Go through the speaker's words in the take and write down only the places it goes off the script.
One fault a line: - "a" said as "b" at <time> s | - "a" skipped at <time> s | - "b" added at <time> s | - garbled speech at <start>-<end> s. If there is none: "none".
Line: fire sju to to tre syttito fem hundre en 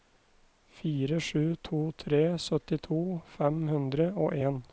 - "to" skipped at 1.8 s
- "og" added at 4.2 s